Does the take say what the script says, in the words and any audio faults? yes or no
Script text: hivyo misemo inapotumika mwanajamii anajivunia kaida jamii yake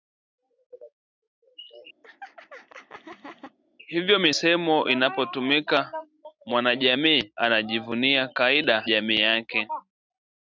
no